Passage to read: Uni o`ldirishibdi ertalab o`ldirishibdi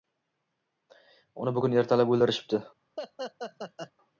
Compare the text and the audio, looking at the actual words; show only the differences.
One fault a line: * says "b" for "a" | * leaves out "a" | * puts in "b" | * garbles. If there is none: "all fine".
* says "bugun" for "o`ldirishibdi"